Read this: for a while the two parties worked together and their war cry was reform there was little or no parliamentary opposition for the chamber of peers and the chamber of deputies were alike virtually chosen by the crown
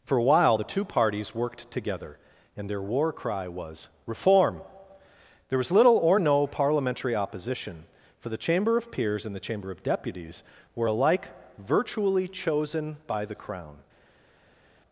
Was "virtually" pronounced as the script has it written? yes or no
yes